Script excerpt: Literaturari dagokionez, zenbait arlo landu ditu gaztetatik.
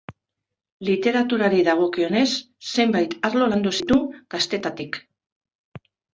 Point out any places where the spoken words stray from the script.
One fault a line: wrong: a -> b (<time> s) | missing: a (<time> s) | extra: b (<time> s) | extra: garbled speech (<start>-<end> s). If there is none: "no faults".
no faults